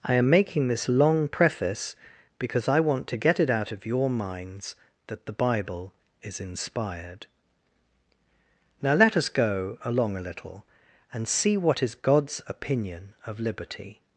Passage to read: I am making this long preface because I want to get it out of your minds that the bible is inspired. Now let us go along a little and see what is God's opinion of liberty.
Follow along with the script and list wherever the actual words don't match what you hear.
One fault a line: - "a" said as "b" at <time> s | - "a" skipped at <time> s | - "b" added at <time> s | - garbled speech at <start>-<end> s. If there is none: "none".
none